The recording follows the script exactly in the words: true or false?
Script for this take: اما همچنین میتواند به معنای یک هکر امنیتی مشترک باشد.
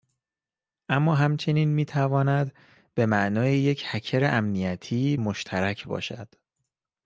true